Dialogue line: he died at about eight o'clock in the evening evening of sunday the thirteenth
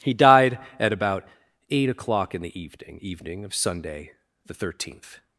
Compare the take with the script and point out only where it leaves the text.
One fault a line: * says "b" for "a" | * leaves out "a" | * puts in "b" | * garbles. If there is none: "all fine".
all fine